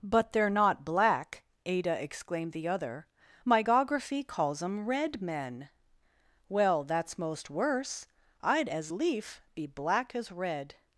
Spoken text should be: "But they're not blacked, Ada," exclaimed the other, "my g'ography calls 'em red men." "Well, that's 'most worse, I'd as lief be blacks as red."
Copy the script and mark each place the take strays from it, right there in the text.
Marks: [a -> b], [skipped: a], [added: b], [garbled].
"But they're not [blacked, -> black] Ada," exclaimed the other, "my g'ography calls 'em red men." "Well, that's 'most worse, I'd as lief be [blacks -> black] as red."